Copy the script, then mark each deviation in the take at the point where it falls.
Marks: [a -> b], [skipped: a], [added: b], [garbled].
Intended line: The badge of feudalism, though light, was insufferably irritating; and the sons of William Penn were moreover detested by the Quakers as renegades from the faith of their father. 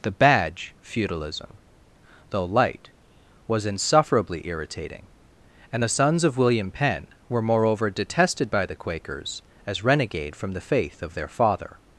The badge [skipped: of] feudalism, though light, was insufferably irritating; and the sons of William Penn were moreover detested by the Quakers as [renegades -> renegade] from the faith of their father.